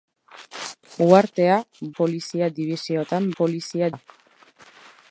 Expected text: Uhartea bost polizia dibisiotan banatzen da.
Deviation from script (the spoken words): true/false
true